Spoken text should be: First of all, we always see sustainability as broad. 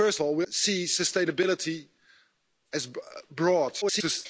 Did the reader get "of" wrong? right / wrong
wrong